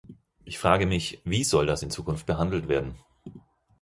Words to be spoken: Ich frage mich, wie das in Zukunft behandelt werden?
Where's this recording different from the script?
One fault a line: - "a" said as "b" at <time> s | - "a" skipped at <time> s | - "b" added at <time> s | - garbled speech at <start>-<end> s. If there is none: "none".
- "soll" added at 1.4 s